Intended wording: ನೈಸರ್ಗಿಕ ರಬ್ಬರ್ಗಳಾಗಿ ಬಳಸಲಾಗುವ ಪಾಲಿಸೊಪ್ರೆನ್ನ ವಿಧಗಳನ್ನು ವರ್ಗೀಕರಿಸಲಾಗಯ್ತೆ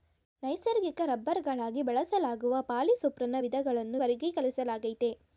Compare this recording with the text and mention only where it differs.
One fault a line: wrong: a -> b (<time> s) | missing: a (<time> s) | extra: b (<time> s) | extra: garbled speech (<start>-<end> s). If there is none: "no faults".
no faults